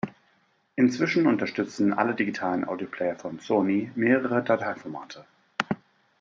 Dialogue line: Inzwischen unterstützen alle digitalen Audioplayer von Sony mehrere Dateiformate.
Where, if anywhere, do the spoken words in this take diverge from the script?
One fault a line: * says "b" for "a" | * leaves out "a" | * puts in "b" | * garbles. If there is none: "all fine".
all fine